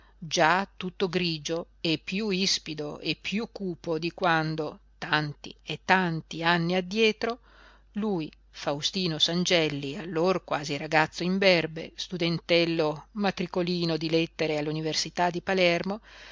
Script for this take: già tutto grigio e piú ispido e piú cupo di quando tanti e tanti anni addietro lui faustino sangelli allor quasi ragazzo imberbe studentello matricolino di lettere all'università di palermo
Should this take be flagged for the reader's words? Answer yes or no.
no